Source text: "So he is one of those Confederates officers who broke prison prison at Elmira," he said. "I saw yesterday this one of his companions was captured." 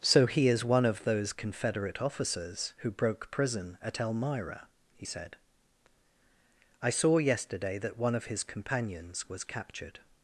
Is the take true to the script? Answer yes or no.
no